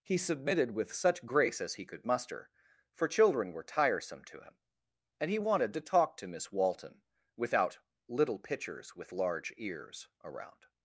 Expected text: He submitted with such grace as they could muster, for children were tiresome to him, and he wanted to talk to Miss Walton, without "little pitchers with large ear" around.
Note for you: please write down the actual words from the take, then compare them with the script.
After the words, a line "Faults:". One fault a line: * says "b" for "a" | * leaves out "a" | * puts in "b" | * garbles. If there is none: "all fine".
He submitted with such grace as he could muster, for children were tiresome to him, and he wanted to talk to Miss Walton, without "little pitchers with large ears" around.
Faults:
* says "he" for "they"
* says "ears" for "ear"